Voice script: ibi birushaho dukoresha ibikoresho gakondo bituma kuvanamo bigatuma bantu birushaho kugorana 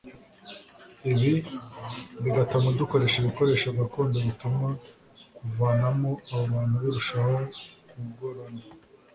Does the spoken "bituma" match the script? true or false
true